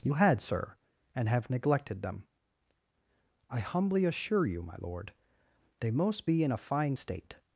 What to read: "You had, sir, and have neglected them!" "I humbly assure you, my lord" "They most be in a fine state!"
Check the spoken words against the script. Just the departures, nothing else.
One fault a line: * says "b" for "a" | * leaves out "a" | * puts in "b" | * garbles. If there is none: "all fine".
all fine